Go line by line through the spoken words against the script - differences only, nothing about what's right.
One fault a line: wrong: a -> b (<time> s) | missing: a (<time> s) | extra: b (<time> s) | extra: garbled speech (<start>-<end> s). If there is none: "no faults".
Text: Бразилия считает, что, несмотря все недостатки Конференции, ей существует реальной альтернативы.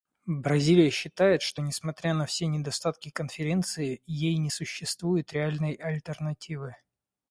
extra: на (2.1 s)
extra: не (4.4 s)